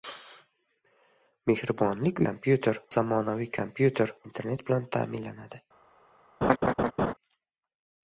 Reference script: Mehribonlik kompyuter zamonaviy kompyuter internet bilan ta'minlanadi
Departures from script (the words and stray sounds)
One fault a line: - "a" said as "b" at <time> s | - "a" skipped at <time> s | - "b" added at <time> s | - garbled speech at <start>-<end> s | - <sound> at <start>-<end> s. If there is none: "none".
- laugh at 6.4-7.1 s